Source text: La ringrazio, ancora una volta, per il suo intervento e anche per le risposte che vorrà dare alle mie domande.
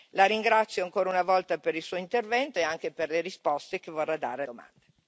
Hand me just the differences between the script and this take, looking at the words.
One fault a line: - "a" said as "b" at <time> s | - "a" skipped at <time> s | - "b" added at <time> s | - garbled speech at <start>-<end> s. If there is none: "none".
- "alle mie" skipped at 4.4 s